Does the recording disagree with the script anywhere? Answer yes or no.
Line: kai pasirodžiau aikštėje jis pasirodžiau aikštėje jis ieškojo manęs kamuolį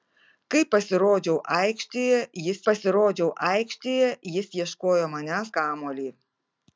no